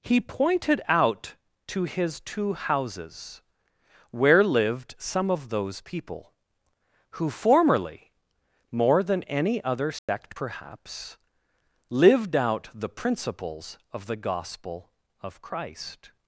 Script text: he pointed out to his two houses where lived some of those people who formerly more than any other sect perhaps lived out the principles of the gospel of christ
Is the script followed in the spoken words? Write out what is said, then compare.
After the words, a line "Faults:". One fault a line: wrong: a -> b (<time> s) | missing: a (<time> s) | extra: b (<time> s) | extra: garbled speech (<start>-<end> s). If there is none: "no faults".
he pointed out to his two houses where lived some of those people who formerly more than any other sect perhaps lived out the principles of the gospel of christ
Faults:
no faults